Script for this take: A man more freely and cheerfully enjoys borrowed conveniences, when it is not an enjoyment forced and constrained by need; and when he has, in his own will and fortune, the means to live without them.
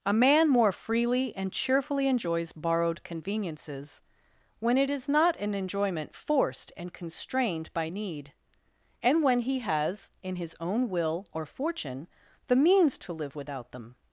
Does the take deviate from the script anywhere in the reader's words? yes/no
yes